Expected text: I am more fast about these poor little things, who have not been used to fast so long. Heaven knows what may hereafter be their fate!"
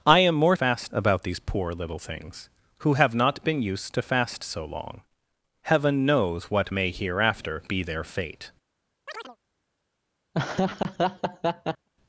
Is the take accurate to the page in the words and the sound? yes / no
no